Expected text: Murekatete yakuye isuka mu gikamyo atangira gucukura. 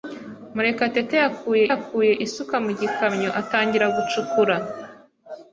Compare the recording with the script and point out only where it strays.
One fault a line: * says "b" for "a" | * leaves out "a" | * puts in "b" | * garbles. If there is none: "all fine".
* puts in "yakuye"